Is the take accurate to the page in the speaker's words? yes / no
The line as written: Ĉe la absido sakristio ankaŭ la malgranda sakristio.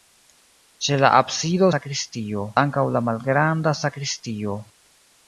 yes